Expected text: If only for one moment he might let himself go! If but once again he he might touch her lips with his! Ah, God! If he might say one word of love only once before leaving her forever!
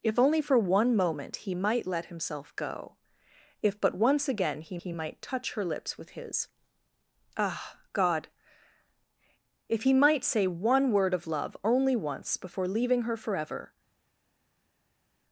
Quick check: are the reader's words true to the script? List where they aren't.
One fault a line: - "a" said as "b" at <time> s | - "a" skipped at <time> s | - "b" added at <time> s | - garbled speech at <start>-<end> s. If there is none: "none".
none